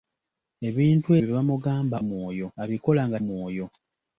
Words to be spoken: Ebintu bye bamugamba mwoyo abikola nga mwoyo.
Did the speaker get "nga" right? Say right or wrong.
right